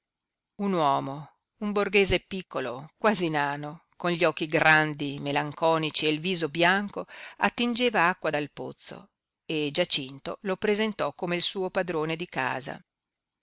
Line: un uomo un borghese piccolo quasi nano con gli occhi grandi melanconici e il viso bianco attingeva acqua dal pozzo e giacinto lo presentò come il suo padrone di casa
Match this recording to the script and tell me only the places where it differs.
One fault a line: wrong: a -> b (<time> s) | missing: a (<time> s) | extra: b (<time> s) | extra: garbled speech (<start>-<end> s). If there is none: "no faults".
no faults